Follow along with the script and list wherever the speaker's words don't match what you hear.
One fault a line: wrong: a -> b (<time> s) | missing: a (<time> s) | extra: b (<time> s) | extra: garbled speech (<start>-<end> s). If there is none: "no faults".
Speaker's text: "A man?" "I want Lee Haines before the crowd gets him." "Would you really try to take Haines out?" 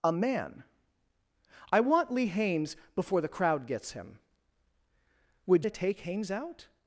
missing: you really try (5.7 s)